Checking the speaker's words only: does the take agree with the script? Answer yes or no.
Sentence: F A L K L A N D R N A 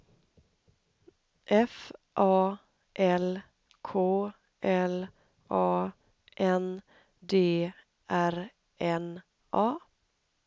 yes